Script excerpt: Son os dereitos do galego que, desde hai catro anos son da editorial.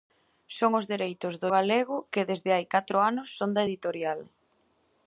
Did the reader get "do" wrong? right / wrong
right